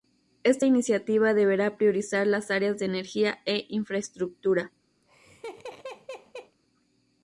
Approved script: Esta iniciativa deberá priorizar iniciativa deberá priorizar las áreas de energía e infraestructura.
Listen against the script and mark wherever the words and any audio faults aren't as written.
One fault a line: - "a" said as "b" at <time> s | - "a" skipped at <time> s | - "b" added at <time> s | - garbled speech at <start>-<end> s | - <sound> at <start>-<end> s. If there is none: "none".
- "iniciativa deberá priorizar" skipped at 2.2 s
- laugh at 5.0-6.6 s